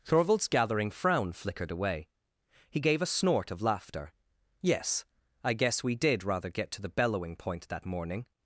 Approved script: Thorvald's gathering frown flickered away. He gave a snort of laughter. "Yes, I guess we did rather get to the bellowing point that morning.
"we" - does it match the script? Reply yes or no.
yes